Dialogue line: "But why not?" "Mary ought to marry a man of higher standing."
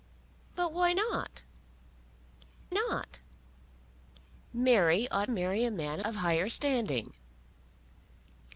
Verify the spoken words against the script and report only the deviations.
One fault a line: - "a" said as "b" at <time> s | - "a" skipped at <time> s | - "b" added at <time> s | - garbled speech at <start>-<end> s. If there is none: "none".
- "not" added at 2.7 s
- "to" skipped at 5.3 s